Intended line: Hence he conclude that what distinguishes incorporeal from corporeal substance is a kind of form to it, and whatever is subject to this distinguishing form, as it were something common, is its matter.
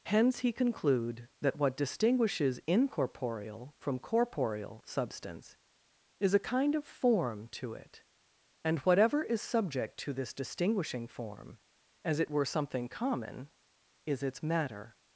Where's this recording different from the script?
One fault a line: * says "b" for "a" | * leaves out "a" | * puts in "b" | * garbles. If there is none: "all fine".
all fine